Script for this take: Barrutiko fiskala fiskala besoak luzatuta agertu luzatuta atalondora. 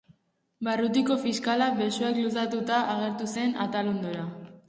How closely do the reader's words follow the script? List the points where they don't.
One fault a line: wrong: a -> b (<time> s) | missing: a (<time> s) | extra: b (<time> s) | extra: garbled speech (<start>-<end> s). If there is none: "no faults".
missing: fiskala (1.7 s)
wrong: luzatuta -> zen (3.3 s)